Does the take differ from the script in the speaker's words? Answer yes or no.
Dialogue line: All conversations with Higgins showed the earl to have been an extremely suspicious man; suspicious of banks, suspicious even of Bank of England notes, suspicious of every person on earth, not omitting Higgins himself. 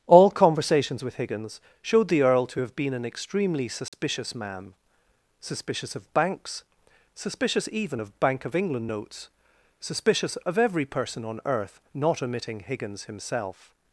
no